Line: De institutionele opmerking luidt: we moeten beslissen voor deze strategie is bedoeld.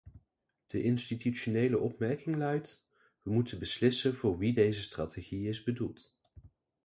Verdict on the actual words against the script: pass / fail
fail